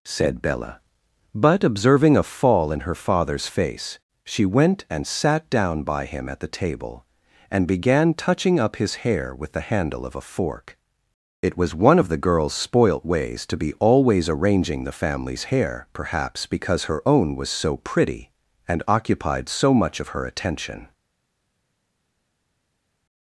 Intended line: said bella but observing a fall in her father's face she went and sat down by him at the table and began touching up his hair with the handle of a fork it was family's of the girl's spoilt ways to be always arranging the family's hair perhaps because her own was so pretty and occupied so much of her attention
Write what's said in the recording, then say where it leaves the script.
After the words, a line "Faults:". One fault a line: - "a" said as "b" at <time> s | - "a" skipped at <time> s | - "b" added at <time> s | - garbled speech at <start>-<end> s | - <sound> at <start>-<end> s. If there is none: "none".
said bella but observing a fall in her father's face she went and sat down by him at the table and began touching up his hair with the handle of a fork it was one of the girl's spoilt ways to be always arranging the family's hair perhaps because her own was so pretty and occupied so much of her attention
Faults:
- "family's" said as "one" at 11.7 s